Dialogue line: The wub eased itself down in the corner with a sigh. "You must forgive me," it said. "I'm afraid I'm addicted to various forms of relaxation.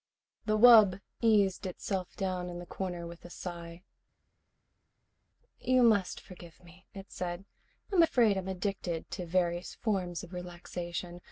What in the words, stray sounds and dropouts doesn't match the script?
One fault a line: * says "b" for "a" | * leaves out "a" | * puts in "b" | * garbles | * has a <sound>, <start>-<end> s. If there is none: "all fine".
all fine